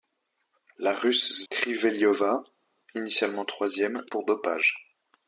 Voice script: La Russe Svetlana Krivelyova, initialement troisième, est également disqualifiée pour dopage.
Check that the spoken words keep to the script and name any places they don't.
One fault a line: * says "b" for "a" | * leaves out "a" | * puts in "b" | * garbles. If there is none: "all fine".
* leaves out "Svetlana"
* leaves out "est également disqualifiée"